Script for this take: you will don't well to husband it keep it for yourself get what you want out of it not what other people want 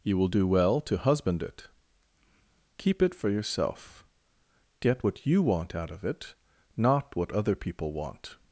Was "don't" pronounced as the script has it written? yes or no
no